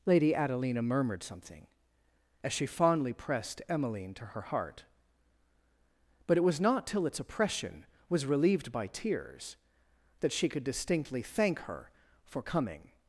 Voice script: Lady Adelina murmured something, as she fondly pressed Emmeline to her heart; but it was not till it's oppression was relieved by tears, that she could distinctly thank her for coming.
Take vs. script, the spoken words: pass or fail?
pass